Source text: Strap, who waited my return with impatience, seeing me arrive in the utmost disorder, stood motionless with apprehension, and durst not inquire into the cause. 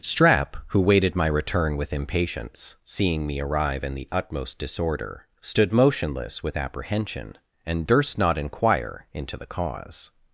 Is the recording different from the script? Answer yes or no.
no